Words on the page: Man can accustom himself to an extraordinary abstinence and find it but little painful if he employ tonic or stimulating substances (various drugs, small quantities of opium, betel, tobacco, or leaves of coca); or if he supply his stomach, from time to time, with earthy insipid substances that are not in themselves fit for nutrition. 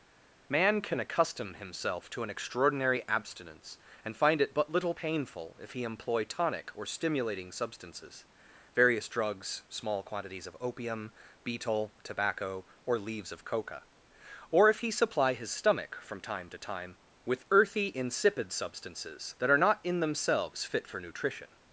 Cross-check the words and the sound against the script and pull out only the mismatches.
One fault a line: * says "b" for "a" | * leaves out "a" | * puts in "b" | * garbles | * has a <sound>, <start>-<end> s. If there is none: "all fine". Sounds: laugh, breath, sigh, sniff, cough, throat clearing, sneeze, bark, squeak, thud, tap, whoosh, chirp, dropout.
all fine